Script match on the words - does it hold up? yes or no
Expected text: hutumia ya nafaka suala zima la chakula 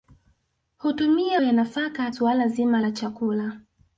yes